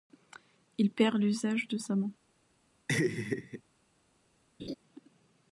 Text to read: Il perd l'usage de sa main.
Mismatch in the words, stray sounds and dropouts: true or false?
true